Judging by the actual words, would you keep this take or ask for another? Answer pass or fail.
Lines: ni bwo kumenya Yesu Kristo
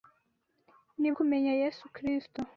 fail